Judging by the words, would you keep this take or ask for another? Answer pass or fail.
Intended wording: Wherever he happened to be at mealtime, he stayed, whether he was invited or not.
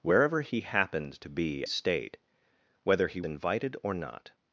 fail